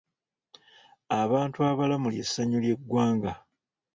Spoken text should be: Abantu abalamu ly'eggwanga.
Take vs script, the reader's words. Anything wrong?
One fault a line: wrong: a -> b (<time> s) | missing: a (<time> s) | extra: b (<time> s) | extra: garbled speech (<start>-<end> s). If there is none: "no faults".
extra: ly'essanyu (2.1 s)